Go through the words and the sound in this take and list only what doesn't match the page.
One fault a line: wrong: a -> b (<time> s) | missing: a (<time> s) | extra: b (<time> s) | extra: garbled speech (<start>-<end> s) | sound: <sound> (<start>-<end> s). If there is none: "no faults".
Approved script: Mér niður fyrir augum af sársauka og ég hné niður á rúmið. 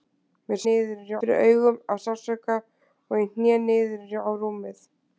no faults